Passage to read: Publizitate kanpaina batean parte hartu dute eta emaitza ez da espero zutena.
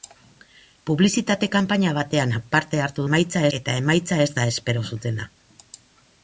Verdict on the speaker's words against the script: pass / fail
fail